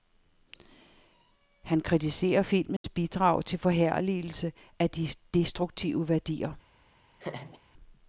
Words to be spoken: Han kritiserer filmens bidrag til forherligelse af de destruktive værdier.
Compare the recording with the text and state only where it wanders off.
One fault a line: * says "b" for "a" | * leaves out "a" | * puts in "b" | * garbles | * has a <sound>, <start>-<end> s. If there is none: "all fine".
* has a dropout, 2.8-2.8 s
* has a laugh, 7.2-7.6 s